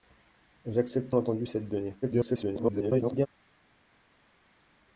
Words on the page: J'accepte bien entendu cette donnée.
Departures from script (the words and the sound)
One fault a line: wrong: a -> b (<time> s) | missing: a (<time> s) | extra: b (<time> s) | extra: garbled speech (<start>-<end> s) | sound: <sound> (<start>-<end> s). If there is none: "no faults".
missing: bien (1.1 s)
extra: garbled speech (2.0-3.3 s)